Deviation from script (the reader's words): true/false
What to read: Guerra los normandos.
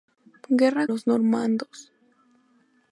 false